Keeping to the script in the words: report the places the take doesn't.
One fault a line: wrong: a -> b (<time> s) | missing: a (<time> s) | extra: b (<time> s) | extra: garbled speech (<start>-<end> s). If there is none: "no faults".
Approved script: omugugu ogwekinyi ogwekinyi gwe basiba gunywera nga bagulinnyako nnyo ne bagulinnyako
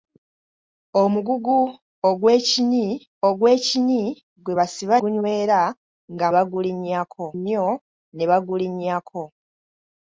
no faults